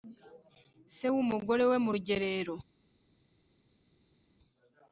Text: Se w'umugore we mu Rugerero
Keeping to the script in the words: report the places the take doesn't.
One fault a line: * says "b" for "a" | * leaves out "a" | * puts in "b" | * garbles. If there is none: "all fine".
all fine